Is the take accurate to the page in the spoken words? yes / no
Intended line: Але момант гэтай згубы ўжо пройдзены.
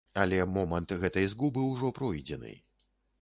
yes